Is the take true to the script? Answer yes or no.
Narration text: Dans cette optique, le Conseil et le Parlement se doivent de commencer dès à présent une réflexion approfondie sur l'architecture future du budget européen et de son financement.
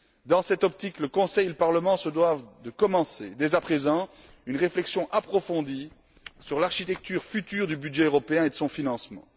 yes